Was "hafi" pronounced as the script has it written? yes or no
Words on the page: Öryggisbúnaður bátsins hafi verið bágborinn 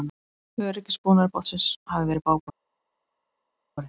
yes